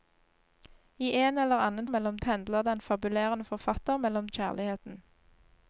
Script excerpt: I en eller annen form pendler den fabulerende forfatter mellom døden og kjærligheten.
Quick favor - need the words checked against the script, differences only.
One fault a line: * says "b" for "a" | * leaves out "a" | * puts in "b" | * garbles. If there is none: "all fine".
* says "mellom" for "form"
* leaves out "døden og"